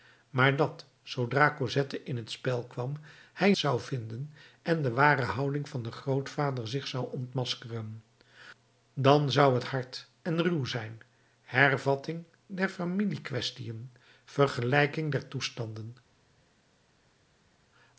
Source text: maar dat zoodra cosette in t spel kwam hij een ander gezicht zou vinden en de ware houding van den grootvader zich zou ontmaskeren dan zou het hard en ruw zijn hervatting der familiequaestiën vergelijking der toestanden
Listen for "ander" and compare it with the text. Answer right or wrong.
wrong